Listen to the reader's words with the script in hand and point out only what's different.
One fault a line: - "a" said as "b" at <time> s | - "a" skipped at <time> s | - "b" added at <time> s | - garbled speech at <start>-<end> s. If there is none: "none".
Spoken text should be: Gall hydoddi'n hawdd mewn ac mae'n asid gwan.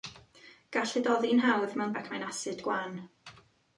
none